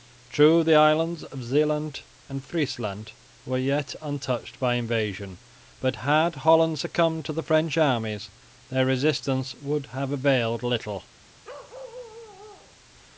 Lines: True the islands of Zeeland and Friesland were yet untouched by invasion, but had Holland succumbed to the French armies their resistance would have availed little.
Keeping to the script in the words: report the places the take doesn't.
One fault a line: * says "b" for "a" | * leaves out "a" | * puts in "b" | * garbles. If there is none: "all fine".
all fine